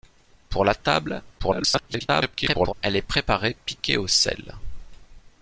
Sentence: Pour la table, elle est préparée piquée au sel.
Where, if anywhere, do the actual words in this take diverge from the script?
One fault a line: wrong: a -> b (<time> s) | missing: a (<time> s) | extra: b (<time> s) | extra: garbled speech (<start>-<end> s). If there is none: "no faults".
extra: garbled speech (1.4-2.7 s)